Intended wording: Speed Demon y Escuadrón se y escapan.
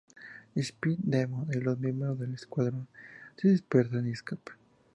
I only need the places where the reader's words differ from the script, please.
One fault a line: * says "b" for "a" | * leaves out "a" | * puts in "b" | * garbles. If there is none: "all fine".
* puts in "los miembros del"
* puts in "dispersan"